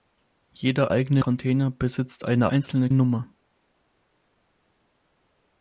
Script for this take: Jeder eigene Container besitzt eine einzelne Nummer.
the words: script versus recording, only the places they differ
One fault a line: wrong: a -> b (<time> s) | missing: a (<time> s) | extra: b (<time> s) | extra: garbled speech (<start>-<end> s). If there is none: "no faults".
no faults